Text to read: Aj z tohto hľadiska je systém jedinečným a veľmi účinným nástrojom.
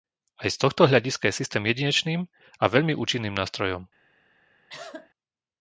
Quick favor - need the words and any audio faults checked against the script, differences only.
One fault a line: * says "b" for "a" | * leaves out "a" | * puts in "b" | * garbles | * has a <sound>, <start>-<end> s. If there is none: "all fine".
* has a cough, 4.7-5.1 s